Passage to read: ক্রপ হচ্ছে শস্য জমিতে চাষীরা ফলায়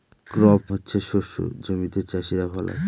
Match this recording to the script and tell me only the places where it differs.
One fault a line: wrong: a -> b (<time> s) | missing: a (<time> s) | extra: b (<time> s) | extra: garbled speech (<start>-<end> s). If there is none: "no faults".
no faults